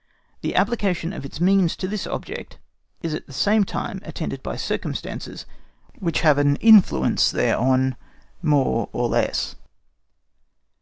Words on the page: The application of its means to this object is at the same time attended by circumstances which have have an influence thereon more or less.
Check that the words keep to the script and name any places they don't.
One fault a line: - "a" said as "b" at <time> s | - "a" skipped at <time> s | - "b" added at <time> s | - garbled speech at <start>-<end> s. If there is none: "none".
- "have" skipped at 6.4 s